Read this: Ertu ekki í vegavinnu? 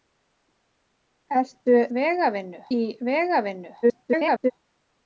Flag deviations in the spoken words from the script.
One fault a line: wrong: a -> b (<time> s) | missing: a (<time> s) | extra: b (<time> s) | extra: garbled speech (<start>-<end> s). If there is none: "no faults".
wrong: ekki -> vegavinnu (2.0 s)
extra: garbled speech (3.8-4.5 s)